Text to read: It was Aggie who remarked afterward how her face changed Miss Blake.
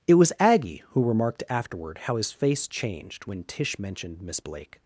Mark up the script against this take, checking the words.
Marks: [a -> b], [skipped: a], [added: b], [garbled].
It was Aggie who remarked afterward how [her -> his] face changed [added: when Tish mentioned] Miss Blake.